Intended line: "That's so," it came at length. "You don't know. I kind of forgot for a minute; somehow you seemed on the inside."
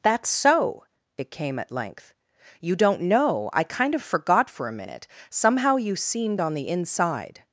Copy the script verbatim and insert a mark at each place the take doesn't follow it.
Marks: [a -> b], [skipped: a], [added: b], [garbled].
"That's so," it came at length. "You don't know. I kind of forgot for a minute; somehow you seemed on the inside."